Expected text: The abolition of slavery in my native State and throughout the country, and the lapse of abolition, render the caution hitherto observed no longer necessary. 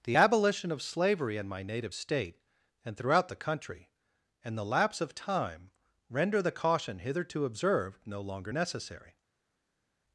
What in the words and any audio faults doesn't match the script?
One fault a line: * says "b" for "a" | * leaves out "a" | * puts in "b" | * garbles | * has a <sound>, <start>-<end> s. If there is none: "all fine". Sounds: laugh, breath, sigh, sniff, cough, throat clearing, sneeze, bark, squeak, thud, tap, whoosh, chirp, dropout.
* says "time" for "abolition"